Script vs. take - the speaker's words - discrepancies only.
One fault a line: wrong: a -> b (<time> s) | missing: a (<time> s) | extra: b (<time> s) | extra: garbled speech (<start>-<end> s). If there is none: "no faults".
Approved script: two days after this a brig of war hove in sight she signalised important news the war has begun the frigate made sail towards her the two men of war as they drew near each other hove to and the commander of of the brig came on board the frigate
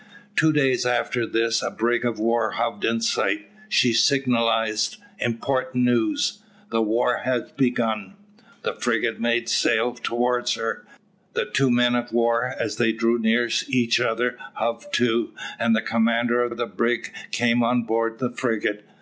no faults